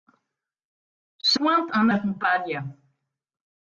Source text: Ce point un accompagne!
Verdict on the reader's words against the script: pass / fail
pass